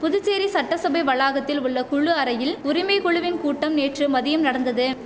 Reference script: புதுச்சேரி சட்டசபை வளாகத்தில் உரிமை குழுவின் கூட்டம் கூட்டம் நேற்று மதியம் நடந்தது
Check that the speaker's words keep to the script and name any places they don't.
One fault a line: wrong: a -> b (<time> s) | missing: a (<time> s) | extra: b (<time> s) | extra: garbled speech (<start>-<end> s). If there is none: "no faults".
extra: உள்ள குழு அறையில் (1.6 s)
missing: கூட்டம் (3.8 s)